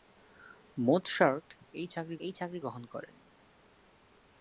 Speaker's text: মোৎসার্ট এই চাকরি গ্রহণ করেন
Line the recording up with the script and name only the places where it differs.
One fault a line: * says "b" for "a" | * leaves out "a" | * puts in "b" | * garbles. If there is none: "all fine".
* puts in "এই চাকরি"